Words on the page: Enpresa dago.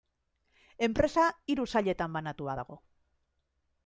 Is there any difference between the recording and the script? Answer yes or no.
yes